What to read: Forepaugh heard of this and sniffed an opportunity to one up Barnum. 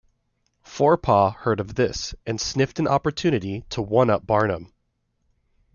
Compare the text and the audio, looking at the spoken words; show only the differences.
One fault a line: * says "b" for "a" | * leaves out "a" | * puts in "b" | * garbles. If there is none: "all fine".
all fine